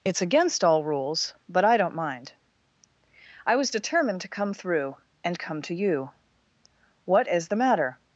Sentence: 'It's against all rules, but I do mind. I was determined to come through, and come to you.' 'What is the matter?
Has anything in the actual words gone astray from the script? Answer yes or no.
yes